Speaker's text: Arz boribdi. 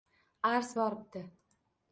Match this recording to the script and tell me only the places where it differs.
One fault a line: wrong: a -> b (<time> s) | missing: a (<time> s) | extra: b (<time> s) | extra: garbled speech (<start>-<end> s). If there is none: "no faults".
no faults